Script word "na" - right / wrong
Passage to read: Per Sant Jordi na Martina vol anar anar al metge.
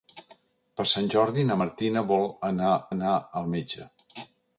right